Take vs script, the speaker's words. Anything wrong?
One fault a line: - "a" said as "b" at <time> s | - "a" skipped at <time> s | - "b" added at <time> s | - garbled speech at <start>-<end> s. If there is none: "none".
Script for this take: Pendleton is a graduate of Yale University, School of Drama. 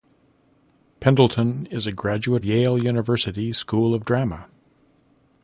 - "of" skipped at 2.4 s